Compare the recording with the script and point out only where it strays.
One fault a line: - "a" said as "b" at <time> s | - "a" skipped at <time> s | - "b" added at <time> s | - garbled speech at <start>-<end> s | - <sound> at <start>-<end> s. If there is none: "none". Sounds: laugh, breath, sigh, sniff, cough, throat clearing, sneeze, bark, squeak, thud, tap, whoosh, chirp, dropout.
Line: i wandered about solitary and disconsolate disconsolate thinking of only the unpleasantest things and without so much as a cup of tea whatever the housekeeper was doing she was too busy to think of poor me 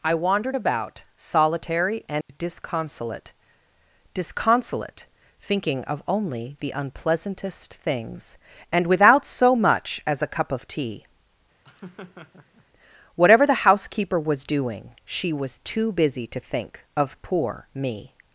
- dropout at 2.2-2.3 s
- laugh at 11.6-12.6 s